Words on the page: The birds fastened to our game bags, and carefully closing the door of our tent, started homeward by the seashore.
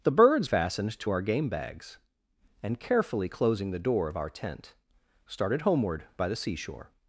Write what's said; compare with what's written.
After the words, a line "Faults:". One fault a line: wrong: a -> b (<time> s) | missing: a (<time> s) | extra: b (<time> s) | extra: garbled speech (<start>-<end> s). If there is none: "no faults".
The birds fastened to our game bags, and carefully closing the door of our tent, started homeward by the seashore.
Faults:
no faults